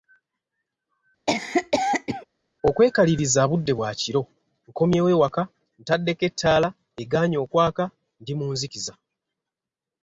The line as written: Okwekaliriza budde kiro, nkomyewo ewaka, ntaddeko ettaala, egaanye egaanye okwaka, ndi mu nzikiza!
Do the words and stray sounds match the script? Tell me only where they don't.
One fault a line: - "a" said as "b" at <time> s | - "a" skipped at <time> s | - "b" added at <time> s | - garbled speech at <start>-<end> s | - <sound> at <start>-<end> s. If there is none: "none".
- cough at 1.3-2.3 s
- "bwa" added at 3.8 s
- "egaanye" skipped at 7.4 s